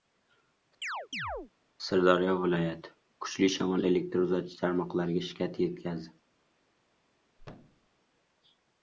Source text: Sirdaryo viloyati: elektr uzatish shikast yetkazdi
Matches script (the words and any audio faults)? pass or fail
fail